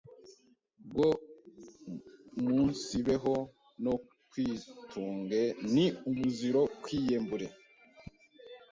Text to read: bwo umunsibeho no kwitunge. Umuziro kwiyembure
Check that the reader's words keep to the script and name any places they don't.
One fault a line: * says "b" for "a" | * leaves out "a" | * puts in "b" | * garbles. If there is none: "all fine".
* puts in "Ni"